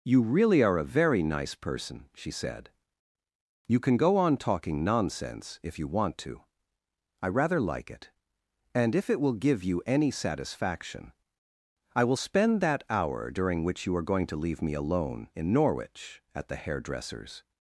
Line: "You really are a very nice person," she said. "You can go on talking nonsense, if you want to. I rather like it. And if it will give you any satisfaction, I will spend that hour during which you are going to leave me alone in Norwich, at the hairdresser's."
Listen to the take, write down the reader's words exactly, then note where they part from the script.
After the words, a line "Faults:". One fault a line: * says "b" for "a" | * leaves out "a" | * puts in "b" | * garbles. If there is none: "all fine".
"You really are a very nice person," she said. "You can go on talking nonsense, if you want to. I rather like it. And if it will give you any satisfaction, I will spend that hour during which you are going to leave me alone in Norwich, at the hairdresser's."
Faults:
all fine